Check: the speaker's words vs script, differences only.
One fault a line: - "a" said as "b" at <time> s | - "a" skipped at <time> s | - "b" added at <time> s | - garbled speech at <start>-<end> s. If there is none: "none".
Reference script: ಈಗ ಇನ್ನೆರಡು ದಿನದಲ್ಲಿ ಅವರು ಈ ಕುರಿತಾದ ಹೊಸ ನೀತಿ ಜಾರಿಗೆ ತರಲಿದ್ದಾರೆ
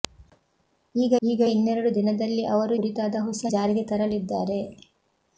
- "ಈಗ" added at 1.2 s
- "ಈ" skipped at 2.7 s
- "ನೀತಿ" skipped at 3.5 s